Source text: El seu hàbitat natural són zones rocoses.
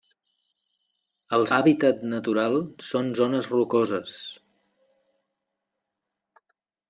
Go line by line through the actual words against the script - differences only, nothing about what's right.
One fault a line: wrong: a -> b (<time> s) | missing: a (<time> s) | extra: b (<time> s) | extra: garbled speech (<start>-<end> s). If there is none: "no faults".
missing: seu (1.4 s)